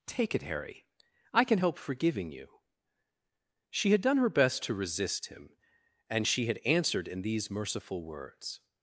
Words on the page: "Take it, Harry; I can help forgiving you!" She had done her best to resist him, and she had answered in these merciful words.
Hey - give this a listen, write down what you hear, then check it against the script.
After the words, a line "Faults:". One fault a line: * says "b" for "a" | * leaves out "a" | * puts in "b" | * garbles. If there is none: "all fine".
"Take it, Harry; I can help forgiving you!" She had done her best to resist him, and she had answered in these merciful words.
Faults:
all fine